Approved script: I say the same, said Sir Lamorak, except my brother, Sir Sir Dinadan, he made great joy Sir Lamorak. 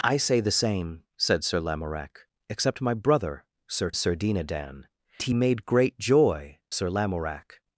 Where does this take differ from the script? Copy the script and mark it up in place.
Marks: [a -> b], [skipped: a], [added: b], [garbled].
I say the same, said Sir Lamorak, except my brother, Sir Sir Dinadan, he made great joy Sir Lamorak.